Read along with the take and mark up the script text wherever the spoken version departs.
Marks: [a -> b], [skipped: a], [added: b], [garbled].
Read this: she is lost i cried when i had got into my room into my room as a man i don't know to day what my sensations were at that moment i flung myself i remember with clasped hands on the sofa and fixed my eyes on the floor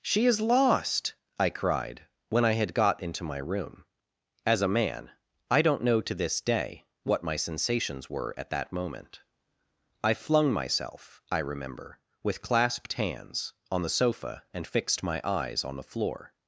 she is lost i cried when i had got into my room [skipped: into my room] as a man i don't know to [added: this] day what my sensations were at that moment i flung myself i remember with clasped hands on the sofa and fixed my eyes on the floor